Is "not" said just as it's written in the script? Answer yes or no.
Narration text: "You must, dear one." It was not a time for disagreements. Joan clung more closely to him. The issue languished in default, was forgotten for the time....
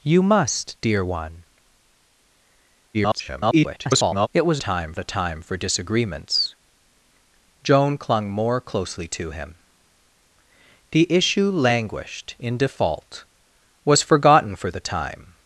no